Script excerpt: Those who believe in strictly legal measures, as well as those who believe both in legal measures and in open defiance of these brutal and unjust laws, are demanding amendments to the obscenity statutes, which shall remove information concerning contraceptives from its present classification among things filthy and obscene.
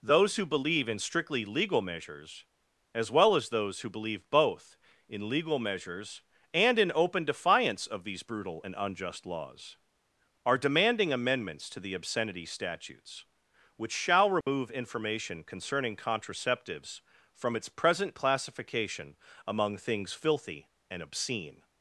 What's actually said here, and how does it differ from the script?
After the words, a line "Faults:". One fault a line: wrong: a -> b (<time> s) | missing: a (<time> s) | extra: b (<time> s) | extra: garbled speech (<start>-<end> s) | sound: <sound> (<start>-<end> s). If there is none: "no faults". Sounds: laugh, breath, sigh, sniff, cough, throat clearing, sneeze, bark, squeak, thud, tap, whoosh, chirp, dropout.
Those who believe in strictly legal measures, as well as those who believe both in legal measures and in open defiance of these brutal and unjust laws, are demanding amendments to the obscenity statutes, which shall remove information concerning contraceptives from its present classification among things filthy and obscene.
Faults:
sound: dropout (14.4-14.5 s)